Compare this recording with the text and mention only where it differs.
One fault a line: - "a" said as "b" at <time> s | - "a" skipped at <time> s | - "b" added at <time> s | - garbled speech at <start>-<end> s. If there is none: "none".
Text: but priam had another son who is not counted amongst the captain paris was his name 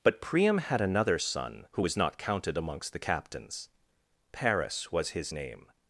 - "is" said as "was" at 1.8 s
- "captain" said as "captains" at 3.0 s